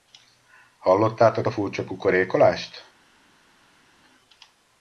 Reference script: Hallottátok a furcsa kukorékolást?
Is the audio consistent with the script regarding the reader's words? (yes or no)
yes